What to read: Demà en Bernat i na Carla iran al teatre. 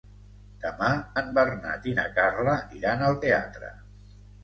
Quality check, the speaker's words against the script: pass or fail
pass